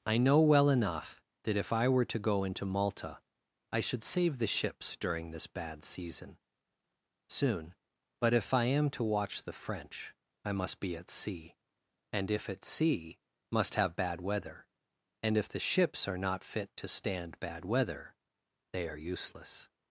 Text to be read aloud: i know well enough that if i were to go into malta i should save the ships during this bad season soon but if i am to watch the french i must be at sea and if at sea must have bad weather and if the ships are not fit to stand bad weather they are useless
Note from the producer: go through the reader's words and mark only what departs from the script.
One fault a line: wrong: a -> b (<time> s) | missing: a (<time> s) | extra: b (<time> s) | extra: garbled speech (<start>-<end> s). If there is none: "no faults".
no faults